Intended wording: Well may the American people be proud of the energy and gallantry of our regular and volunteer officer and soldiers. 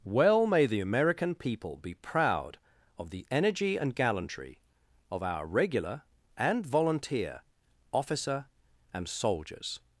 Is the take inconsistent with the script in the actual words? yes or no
no